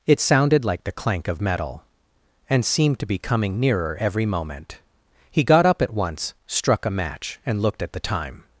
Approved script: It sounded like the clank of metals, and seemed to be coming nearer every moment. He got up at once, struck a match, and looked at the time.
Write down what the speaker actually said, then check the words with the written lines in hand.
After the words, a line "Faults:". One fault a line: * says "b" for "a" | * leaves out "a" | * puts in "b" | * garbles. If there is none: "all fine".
It sounded like the clank of metal, and seemed to be coming nearer every moment. He got up at once, struck a match, and looked at the time.
Faults:
* says "metal" for "metals"